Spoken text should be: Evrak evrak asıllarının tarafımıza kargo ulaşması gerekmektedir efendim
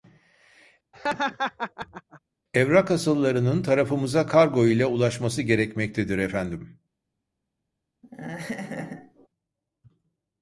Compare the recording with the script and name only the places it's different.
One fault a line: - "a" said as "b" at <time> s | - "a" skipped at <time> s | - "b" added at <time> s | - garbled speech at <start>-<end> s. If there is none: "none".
- "evrak" skipped at 2.9 s
- "ile" added at 4.7 s